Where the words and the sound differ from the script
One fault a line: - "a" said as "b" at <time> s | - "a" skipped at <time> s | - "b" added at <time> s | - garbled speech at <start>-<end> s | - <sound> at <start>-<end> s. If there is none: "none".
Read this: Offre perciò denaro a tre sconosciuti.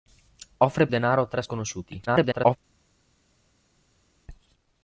- "perciò" skipped at 0.9 s
- garbled speech at 2.1-2.6 s